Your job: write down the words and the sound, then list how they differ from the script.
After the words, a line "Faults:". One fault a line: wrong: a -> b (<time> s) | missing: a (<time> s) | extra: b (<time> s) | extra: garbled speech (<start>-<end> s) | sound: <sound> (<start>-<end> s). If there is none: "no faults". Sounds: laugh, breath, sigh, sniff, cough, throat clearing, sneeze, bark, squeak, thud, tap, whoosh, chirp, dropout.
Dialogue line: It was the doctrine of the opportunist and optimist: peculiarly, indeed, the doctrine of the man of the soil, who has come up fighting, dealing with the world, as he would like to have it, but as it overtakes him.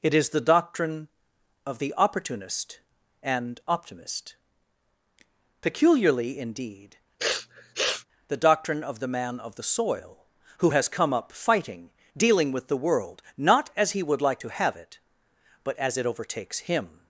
It is the doctrine of the opportunist and optimist: peculiarly, indeed, the doctrine of the man of the soil, who has come up fighting, dealing with the world, not as he would like to have it, but as it overtakes him.
Faults:
wrong: was -> is (0.1 s)
sound: sniff (7.2-8.1 s)
extra: not (13.4 s)